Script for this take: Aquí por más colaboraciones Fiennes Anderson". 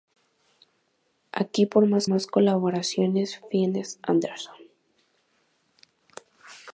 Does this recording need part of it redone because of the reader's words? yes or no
yes